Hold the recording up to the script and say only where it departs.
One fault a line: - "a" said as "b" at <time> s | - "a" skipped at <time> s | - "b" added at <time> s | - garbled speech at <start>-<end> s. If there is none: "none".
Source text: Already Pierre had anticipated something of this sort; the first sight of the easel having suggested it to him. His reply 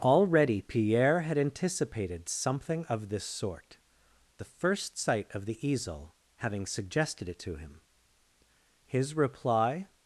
none